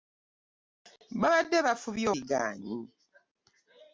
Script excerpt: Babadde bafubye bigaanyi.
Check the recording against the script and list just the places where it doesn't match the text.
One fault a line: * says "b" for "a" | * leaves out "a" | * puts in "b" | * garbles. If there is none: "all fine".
all fine